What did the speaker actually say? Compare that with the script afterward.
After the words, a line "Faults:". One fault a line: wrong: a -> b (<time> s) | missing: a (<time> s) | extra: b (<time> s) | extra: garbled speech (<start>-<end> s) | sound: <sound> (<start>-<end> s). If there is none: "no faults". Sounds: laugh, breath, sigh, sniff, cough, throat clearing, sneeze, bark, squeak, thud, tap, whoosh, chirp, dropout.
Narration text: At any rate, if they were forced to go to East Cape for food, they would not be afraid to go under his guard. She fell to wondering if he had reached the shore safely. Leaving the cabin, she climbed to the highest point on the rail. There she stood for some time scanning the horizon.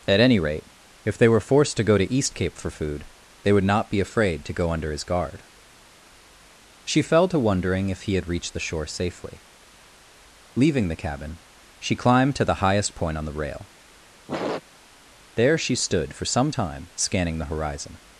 At any rate, if they were forced to go to East Cape for food, they would not be afraid to go under his guard. She fell to wondering if he had reached the shore safely. Leaving the cabin, she climbed to the highest point on the rail. There she stood for some time scanning the horizon.
Faults:
sound: sniff (14.3-14.6 s)